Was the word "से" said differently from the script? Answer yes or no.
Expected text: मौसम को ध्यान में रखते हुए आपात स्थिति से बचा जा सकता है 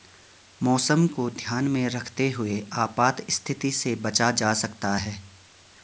no